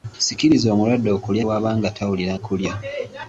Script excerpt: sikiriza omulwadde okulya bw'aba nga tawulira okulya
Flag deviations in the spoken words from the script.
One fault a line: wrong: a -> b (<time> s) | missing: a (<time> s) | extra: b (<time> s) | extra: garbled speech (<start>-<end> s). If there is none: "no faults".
no faults